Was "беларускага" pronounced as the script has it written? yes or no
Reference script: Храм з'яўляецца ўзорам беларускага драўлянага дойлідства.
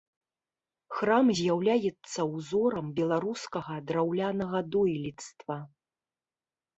yes